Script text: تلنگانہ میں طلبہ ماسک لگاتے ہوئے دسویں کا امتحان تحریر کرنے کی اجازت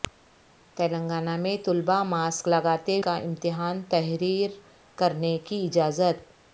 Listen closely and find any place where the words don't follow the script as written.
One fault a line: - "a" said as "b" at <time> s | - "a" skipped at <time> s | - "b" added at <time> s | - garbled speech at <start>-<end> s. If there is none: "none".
- "ہوئے دسویں" skipped at 3.0 s